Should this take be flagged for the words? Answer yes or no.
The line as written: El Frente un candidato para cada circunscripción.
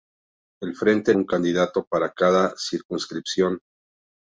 no